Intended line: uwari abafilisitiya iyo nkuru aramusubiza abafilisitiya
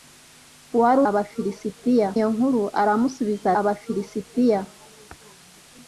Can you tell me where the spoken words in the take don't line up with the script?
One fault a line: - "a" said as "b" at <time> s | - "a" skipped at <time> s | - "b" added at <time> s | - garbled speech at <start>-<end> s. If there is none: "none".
none